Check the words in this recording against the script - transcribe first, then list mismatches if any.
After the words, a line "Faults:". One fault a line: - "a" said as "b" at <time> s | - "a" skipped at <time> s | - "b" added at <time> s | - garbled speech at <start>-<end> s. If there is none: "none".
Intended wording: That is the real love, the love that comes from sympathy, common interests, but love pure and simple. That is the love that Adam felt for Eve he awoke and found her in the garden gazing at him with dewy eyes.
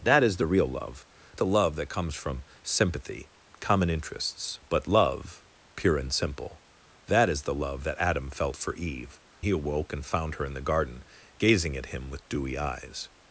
That is the real love, the love that comes from sympathy, common interests, but love pure and simple. That is the love that Adam felt for Eve he awoke and found her in the garden gazing at him with dewy eyes.
Faults:
none